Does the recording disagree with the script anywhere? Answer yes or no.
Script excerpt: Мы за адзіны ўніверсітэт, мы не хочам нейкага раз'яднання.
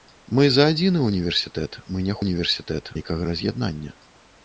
yes